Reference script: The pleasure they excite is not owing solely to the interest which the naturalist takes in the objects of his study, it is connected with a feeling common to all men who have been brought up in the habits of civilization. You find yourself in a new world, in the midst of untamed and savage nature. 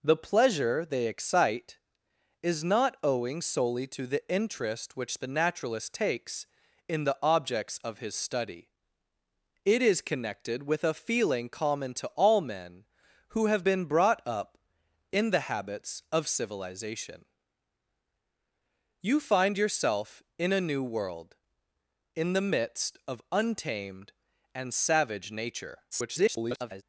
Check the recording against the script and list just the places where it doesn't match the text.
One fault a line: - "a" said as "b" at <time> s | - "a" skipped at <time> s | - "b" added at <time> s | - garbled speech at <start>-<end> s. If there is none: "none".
- garbled speech at 25.9-26.8 s